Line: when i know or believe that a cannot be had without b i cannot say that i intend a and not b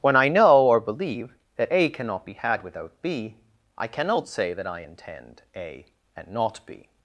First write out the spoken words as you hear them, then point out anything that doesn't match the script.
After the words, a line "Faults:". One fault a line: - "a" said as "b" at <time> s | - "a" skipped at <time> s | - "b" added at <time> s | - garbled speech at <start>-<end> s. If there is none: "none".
when i know or believe that a cannot be had without b i cannot say that i intend a and not b
Faults:
none